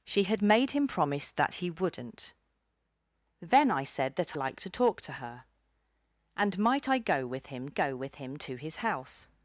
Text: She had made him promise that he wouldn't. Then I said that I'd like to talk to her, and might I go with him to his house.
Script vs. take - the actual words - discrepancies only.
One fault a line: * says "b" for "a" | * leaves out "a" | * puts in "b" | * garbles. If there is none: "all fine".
* leaves out "I'd"
* puts in "go with him"